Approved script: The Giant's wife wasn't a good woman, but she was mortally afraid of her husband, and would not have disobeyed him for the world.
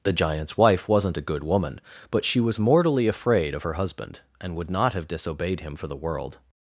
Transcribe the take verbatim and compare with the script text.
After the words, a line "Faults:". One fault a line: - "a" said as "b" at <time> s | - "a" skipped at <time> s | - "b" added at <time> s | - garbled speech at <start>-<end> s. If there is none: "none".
The Giant's wife wasn't a good woman, but she was mortally afraid of her husband, and would not have disobeyed him for the world.
Faults:
none